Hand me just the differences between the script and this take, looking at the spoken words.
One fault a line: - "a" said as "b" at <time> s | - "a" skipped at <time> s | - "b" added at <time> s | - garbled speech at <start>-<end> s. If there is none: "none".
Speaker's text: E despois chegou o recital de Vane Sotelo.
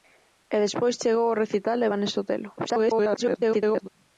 - garbled speech at 2.6-3.9 s